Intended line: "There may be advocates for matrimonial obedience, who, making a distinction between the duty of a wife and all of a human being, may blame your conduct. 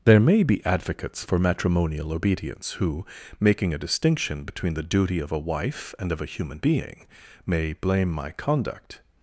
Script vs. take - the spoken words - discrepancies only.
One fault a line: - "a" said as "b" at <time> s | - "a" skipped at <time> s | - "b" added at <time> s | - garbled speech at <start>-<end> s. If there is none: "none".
- "all" skipped at 6.1 s
- "your" said as "my" at 8.1 s